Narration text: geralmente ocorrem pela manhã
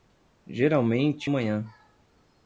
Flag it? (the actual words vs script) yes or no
yes